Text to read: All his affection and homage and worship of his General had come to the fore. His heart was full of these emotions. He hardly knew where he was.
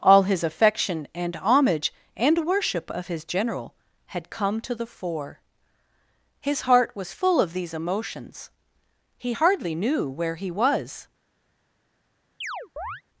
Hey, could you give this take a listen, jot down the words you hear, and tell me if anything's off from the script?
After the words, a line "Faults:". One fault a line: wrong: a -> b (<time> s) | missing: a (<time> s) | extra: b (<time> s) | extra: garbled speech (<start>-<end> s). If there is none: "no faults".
All his affection and homage and worship of his General had come to the fore. His heart was full of these emotions. He hardly knew where he was.
Faults:
no faults